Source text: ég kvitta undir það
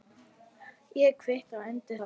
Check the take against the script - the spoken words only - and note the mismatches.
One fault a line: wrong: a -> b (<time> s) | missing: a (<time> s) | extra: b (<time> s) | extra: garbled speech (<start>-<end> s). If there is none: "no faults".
no faults